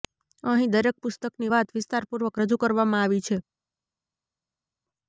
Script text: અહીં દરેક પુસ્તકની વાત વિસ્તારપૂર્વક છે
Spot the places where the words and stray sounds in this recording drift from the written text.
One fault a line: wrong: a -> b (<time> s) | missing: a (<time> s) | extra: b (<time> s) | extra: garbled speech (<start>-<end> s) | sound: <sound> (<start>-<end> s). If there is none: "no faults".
extra: રજૂ કરવામાં આવી (2.4 s)